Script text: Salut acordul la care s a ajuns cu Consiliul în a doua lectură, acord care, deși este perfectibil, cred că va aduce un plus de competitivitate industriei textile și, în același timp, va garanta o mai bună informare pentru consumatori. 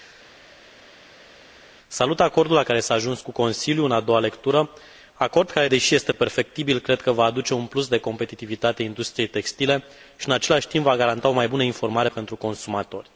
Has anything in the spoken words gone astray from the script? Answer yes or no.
no